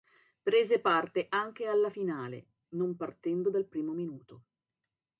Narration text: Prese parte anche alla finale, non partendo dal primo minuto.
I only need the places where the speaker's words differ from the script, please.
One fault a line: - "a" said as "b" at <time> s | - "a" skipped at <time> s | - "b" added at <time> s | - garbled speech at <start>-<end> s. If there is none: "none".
none